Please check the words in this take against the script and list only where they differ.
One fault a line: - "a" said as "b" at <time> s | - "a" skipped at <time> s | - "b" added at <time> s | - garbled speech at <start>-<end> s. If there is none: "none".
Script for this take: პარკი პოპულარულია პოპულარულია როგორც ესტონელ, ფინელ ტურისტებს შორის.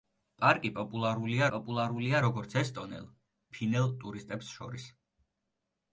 none